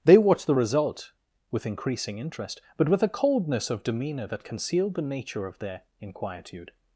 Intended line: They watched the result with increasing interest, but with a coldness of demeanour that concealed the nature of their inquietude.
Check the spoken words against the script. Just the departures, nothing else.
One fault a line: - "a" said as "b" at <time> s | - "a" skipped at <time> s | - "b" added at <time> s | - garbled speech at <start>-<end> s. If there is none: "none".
none